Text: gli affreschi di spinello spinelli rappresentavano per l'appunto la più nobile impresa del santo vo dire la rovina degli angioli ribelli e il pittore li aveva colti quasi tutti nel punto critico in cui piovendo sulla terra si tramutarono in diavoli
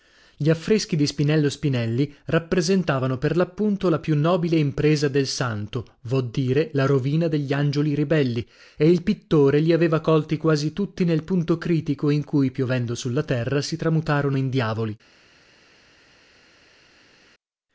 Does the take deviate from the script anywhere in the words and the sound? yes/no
no